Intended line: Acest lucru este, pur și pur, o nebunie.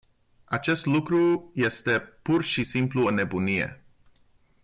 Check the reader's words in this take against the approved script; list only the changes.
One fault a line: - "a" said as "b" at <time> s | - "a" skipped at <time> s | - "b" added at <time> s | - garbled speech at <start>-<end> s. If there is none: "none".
- "pur" said as "simplu" at 2.6 s